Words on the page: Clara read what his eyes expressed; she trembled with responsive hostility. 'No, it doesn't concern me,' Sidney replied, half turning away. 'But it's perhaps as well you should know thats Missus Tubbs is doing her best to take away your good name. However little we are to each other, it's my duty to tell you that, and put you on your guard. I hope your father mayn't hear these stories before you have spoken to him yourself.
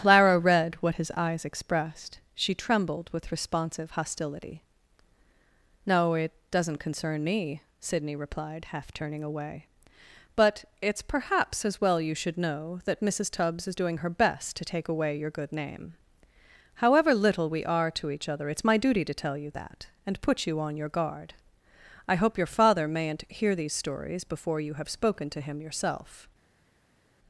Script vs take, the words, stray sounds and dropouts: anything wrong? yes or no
yes